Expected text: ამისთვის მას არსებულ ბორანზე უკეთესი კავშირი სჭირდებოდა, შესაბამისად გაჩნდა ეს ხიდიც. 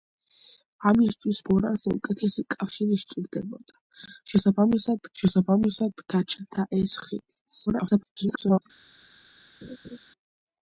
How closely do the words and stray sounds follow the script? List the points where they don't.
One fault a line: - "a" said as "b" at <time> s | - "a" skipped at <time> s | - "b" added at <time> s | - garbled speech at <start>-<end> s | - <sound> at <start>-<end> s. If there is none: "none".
- "მას არსებულ" skipped at 1.4 s
- "შესაბამისად" added at 5.2 s
- garbled speech at 7.7-8.6 s
- laugh at 9.6-10.0 s